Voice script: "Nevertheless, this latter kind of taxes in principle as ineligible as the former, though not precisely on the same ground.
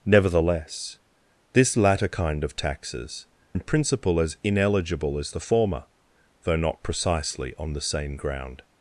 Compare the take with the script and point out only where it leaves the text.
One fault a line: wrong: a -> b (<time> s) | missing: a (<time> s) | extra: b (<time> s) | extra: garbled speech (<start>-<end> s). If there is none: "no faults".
no faults